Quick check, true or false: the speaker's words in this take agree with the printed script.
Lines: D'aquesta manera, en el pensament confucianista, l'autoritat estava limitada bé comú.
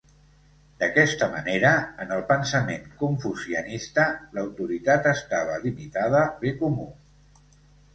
true